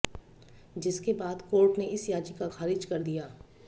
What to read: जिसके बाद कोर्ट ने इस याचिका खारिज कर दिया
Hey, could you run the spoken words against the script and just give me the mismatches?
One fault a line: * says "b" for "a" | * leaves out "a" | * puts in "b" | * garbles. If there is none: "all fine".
all fine